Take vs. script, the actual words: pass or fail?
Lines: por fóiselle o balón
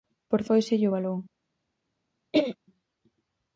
pass